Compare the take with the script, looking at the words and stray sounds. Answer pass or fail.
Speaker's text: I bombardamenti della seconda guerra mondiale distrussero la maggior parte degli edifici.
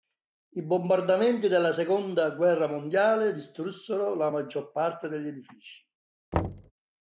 fail